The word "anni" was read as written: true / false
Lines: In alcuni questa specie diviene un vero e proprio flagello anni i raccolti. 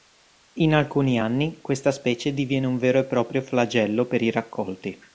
false